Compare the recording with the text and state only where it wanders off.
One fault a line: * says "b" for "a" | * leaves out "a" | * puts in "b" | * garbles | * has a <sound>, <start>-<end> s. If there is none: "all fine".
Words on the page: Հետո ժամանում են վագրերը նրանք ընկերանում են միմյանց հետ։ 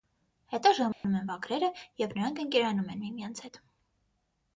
* has a dropout, 0.9-1.0 s
* puts in "և"